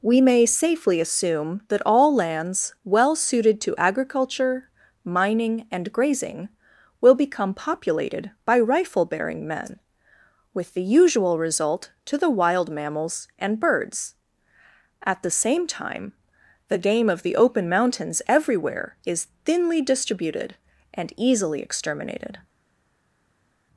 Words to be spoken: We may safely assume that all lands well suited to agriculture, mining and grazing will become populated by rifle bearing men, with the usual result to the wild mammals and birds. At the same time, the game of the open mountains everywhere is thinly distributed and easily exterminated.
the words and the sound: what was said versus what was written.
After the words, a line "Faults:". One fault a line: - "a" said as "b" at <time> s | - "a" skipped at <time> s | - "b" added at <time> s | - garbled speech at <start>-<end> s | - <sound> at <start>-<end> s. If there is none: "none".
We may safely assume that all lands well suited to agriculture, mining and grazing will become populated by rifle bearing men, with the usual result to the wild mammals and birds. At the same time, the game of the open mountains everywhere is thinly distributed and easily exterminated.
Faults:
none